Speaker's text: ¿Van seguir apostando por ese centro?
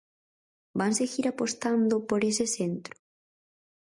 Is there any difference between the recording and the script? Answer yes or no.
no